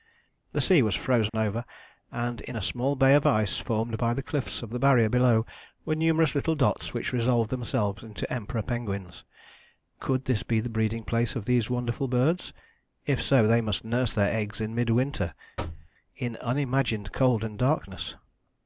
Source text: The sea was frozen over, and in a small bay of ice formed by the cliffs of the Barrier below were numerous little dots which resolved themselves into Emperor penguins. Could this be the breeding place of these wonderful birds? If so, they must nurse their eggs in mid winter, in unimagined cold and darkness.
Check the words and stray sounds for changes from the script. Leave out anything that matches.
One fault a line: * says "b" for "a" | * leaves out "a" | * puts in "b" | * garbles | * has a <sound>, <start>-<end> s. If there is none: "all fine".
* has a dropout, 1.3-1.3 s
* has a thud, 15.6-15.9 s